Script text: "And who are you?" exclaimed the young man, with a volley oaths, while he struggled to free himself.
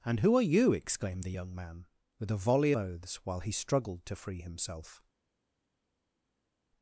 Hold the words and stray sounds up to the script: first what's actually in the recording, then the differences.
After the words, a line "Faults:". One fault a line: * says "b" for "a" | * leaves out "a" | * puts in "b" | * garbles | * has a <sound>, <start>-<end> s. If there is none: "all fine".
"And who are you?" exclaimed the young man, with a volley oaths, while he struggled to free himself.
Faults:
all fine